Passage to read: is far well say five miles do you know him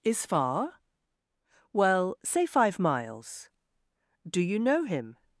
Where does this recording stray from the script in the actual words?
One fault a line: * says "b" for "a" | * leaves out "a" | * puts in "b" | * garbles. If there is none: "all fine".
all fine